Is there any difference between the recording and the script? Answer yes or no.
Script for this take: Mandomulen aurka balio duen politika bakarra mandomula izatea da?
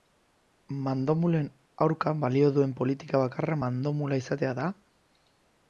no